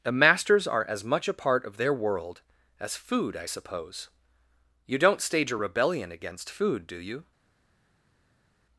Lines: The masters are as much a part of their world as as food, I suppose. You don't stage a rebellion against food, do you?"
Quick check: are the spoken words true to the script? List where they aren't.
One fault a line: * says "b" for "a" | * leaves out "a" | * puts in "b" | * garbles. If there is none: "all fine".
* leaves out "as"